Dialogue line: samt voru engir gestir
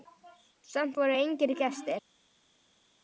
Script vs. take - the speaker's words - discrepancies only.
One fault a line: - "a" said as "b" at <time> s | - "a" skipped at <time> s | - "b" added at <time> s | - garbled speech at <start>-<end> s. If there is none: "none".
none